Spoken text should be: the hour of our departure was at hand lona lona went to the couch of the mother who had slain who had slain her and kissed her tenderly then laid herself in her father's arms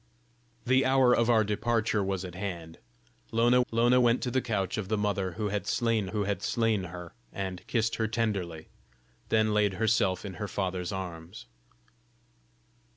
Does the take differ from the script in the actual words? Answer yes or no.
no